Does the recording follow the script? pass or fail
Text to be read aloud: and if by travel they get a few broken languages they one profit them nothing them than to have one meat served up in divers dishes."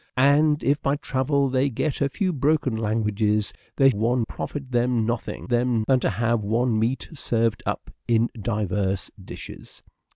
pass